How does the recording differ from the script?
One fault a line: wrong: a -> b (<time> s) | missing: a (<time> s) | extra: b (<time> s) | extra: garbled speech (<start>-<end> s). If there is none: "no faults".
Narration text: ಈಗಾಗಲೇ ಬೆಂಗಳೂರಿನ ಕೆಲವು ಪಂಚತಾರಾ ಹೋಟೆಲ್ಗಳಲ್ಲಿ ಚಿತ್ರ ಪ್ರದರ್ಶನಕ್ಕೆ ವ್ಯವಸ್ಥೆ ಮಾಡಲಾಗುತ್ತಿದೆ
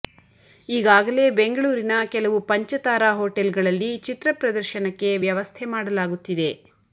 no faults